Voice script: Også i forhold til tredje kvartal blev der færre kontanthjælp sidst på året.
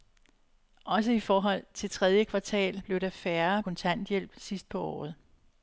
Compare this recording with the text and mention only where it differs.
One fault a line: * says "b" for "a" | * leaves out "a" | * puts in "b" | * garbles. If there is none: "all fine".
all fine